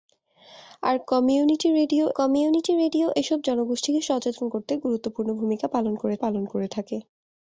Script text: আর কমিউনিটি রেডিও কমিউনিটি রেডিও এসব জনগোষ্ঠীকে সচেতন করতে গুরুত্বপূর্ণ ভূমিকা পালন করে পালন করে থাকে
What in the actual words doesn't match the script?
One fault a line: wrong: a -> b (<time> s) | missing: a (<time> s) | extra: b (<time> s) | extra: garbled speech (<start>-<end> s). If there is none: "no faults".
no faults